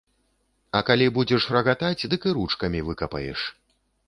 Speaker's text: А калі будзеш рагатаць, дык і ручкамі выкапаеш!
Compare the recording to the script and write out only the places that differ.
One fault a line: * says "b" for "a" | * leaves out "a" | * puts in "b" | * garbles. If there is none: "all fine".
all fine